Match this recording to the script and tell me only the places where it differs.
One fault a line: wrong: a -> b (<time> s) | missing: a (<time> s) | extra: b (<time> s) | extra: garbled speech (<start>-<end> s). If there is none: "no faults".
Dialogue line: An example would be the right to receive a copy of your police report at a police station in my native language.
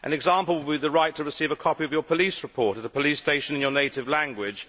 wrong: my -> your (3.6 s)